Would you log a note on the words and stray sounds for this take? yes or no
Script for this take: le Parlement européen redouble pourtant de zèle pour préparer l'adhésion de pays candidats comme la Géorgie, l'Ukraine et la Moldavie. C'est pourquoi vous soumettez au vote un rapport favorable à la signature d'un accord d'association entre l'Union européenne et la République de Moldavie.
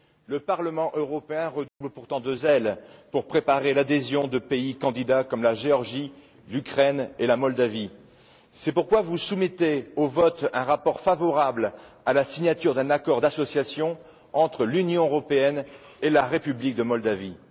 yes